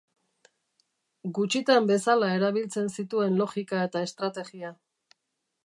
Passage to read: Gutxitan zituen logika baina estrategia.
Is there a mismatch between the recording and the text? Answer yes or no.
yes